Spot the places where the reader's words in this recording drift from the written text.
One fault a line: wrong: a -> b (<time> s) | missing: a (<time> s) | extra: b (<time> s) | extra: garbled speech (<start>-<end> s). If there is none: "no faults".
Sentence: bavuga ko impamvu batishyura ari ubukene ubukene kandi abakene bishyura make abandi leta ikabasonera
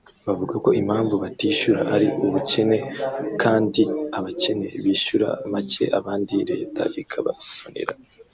missing: ubukene (2.8 s)